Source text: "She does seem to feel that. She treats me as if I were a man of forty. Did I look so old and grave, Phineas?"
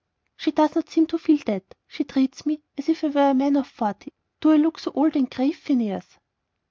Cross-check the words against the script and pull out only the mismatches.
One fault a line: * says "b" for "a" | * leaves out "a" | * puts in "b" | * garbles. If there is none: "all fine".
* puts in "not"
* says "Do" for "Did"